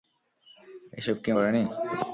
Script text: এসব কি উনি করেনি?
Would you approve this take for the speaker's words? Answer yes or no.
no